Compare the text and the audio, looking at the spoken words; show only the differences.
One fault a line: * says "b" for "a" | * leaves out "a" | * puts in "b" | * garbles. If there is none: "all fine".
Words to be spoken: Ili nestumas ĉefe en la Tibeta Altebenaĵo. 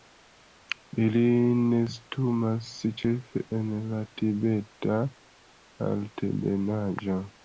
all fine